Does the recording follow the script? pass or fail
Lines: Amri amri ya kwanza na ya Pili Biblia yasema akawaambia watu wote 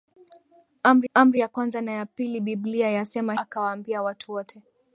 pass